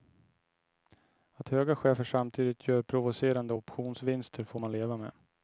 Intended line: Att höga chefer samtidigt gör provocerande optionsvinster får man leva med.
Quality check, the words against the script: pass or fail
pass